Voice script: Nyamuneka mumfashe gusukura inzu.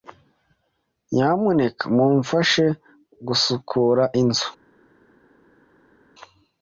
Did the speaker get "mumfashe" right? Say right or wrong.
right